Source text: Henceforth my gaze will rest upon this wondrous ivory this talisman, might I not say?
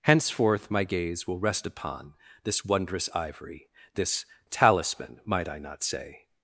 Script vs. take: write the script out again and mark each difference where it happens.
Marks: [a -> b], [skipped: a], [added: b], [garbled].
Henceforth my gaze will rest upon this wondrous ivory this talisman, might I not say?